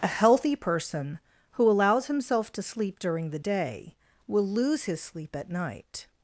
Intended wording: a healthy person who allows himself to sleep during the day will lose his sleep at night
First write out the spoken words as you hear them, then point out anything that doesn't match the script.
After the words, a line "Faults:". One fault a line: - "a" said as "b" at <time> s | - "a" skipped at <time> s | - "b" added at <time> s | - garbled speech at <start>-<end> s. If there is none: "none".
a healthy person who allows himself to sleep during the day will lose his sleep at night
Faults:
none